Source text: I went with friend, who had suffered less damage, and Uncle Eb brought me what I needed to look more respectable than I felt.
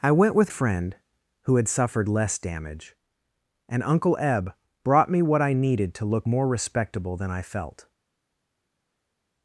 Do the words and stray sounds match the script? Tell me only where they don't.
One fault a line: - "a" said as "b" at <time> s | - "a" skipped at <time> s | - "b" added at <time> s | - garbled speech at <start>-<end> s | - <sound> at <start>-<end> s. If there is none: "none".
none